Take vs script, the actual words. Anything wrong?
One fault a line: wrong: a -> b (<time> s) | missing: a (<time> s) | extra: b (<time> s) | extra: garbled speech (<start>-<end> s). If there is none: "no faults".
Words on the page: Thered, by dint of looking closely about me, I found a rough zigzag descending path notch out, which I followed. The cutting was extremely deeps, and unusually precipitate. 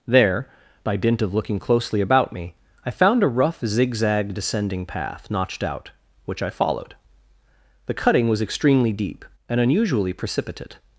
wrong: Thered -> There (0.1 s)
wrong: notch -> notched (5.3 s)
wrong: deeps -> deep (8.9 s)